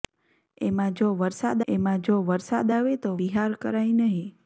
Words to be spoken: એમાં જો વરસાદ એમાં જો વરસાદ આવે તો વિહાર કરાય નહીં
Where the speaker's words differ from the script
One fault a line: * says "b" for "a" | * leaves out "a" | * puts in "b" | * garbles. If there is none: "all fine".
all fine